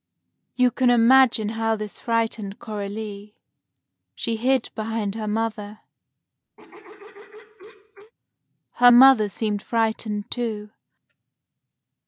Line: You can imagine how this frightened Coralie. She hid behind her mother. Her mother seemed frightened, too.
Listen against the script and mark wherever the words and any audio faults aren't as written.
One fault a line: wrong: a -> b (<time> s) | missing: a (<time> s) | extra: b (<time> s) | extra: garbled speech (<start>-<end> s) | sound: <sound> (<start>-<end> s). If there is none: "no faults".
sound: throat clearing (6.6-8.1 s)